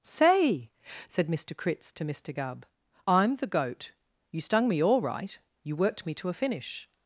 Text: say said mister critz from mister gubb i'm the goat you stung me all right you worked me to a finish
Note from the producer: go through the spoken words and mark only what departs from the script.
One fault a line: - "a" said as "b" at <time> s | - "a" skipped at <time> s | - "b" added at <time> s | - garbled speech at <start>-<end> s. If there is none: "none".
- "from" said as "to" at 1.9 s